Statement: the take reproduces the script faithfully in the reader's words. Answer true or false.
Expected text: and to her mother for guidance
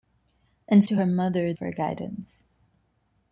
true